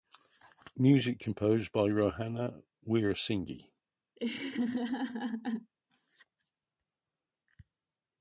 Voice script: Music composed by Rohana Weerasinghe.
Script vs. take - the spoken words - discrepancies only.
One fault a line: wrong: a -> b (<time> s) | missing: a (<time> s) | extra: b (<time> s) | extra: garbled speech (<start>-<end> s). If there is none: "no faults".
no faults